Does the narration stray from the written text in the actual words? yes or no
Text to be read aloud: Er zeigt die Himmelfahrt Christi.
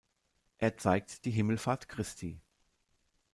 no